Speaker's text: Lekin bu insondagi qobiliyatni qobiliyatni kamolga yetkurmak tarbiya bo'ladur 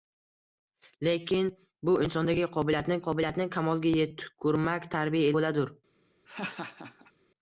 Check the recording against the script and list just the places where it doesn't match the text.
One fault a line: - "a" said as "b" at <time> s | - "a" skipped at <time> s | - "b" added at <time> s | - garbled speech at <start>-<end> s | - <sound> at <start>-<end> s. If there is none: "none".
- laugh at 6.3-7.1 s